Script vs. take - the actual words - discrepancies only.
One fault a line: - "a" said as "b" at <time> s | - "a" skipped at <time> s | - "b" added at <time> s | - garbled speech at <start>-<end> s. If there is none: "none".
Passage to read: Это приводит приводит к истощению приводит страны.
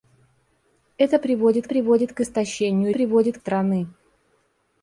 none